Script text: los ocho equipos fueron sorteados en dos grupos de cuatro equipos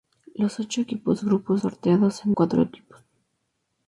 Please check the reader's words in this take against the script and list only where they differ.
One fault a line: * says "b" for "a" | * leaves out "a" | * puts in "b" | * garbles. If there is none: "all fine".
* says "grupos" for "fueron"
* leaves out "dos grupos de"